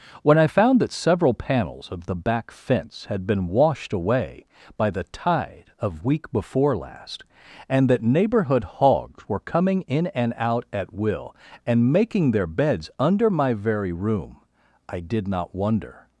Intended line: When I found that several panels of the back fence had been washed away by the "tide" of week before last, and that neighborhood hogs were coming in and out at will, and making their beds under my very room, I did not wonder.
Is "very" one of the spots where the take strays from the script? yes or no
no